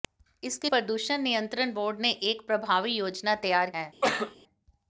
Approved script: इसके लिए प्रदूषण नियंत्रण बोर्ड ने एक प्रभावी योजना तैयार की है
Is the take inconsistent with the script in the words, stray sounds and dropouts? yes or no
yes